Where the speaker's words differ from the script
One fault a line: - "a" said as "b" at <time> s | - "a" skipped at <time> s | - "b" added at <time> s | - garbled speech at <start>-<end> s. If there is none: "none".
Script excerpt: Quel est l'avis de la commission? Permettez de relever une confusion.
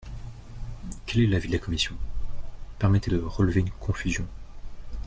none